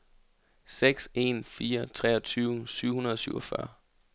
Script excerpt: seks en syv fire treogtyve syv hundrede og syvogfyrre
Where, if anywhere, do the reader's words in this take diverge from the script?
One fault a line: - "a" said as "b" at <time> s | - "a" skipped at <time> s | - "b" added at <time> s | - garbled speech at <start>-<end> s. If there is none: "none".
- "syv" skipped at 1.4 s